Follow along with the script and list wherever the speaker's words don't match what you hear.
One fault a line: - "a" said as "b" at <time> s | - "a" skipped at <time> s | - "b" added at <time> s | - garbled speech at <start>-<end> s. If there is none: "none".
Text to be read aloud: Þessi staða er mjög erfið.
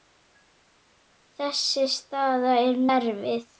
- "mjög" skipped at 2.8 s